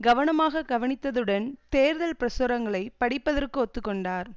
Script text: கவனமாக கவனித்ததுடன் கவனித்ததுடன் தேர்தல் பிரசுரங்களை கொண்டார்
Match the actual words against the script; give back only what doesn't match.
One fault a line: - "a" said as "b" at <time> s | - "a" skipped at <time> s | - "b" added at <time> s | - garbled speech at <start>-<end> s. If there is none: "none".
- "கவனித்ததுடன்" skipped at 1.4 s
- "படிப்பதற்கு ஒத்து" added at 3.0 s